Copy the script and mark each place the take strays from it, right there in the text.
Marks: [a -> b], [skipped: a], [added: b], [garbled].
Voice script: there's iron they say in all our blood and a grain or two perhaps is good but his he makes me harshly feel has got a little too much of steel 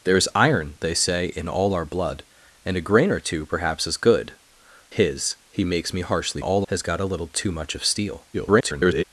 there's iron they say in all our blood and a grain or two perhaps is good [skipped: but] his he makes me harshly [feel -> all] has got a little too much of steel [garbled]